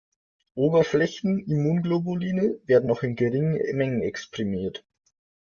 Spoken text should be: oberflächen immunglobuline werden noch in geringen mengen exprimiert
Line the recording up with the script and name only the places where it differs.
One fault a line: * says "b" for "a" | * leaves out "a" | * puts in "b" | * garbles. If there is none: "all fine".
all fine